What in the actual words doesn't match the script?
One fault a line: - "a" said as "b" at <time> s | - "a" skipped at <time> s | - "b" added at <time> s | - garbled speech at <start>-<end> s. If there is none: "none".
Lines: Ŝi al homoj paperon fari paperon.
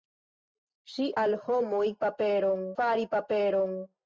none